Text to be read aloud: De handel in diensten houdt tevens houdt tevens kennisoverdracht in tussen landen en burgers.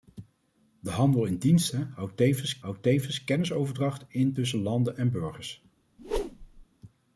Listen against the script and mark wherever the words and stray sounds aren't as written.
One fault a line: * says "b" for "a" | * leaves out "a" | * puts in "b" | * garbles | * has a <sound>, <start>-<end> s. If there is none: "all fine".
* has a whoosh, 6.0-6.7 s